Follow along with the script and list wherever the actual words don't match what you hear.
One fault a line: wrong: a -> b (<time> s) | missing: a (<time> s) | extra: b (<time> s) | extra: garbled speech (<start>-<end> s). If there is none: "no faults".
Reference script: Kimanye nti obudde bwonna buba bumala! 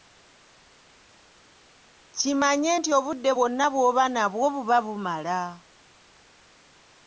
extra: bw'oba nabwo (3.7 s)